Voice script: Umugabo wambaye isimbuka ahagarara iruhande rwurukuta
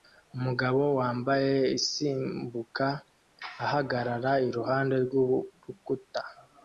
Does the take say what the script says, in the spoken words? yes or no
yes